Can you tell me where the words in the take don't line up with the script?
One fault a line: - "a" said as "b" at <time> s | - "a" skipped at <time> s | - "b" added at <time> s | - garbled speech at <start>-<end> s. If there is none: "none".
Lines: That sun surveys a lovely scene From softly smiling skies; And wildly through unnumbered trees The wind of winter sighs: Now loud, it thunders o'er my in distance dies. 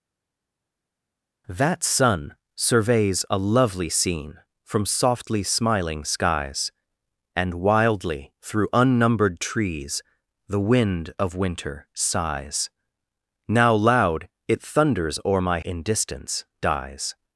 none